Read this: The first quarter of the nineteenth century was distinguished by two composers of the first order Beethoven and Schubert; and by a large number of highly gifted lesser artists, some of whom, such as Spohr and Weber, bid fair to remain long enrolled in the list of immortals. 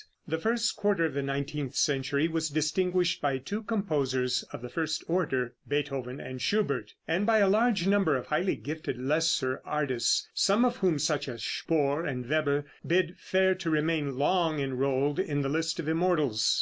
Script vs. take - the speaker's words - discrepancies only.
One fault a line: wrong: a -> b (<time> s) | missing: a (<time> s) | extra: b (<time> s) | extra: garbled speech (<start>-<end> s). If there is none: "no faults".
no faults